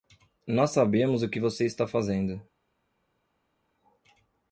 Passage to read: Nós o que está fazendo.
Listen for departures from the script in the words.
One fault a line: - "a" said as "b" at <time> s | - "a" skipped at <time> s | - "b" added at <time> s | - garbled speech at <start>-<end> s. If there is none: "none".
- "sabemos" added at 0.7 s
- "você" added at 1.4 s